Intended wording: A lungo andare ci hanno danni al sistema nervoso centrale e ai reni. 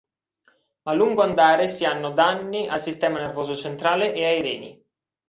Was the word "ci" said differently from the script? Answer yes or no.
yes